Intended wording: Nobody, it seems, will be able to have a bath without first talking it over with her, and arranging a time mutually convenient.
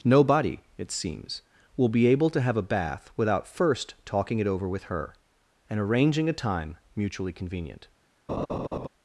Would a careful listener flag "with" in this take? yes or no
no